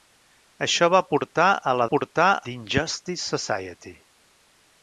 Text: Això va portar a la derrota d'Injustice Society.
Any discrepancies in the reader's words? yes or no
yes